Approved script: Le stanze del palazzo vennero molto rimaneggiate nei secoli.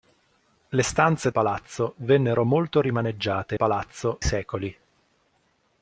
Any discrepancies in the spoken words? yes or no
yes